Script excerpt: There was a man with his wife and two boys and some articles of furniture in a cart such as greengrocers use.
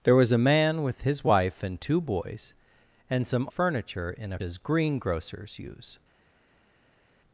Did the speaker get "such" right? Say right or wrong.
wrong